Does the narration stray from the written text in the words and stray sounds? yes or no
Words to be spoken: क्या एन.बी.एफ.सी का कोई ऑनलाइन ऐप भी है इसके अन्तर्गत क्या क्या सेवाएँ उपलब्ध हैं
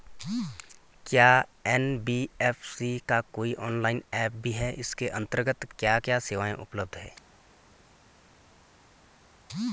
no